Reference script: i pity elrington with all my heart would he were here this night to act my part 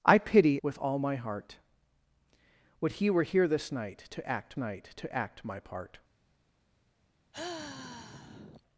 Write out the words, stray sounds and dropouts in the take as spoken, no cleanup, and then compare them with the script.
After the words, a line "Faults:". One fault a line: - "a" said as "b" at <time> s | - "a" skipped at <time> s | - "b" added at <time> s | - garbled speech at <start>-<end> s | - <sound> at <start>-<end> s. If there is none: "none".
i pity with all my heart would he were here this night to act night to act my part
Faults:
- "elrington" skipped at 0.6 s
- "night to act" added at 4.6 s
- sigh at 7.3-8.6 s